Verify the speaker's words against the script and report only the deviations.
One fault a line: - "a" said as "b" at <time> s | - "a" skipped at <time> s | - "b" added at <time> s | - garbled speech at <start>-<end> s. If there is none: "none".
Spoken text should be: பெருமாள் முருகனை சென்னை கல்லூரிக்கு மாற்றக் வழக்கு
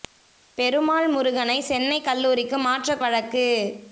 none